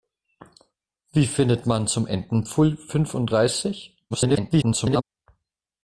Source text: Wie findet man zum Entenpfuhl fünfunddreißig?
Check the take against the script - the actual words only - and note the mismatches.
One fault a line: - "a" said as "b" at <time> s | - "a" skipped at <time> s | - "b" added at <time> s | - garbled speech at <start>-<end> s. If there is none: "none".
- garbled speech at 4.1-5.0 s